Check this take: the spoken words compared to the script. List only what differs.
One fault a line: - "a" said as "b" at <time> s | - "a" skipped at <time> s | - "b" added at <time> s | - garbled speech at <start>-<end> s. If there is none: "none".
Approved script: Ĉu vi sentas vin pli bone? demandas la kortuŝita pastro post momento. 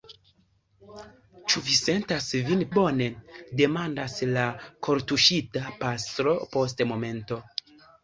- "pli" skipped at 2.6 s